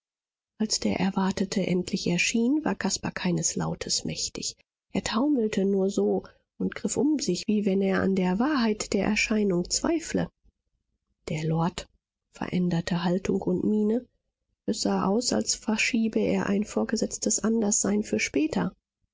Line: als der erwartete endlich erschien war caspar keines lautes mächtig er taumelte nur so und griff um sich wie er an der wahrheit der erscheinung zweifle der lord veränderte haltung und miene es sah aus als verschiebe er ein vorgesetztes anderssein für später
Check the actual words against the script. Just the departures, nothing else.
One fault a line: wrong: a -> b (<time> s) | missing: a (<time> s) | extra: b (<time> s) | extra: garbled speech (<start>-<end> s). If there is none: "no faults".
extra: wenn (7.7 s)